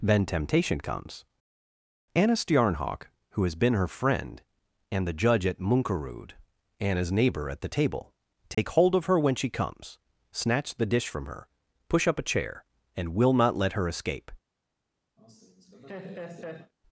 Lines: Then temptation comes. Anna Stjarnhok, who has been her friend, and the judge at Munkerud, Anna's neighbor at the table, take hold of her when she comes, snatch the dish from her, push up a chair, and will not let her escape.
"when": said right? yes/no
yes